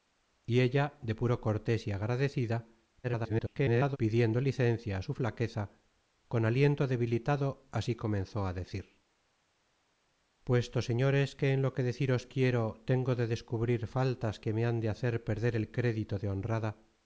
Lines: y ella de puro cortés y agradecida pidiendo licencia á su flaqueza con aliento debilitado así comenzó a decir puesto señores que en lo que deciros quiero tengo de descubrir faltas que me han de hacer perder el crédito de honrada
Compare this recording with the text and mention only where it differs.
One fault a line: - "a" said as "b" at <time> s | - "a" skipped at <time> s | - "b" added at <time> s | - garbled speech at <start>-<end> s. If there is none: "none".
- garbled speech at 3.0-4.0 s